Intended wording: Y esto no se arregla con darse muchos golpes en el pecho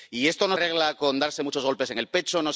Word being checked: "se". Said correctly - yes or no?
no